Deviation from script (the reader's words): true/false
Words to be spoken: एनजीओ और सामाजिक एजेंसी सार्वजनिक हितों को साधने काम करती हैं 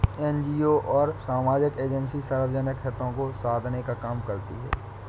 true